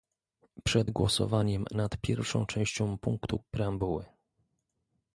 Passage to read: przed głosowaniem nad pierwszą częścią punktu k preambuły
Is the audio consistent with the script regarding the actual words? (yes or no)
no